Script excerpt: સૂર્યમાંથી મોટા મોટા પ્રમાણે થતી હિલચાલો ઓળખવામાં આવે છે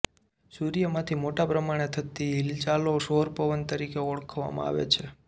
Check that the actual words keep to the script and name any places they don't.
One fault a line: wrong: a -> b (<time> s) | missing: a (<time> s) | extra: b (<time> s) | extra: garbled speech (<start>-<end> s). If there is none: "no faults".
missing: મોટા (1.4 s)
extra: સૌર પવન તરીકે (3.0 s)